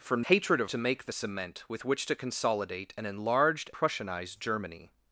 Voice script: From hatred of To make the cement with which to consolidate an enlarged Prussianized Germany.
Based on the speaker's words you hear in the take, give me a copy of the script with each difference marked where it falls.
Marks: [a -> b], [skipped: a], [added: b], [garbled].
From hatred of To make the cement with which to consolidate an enlarged Prussianized Germany.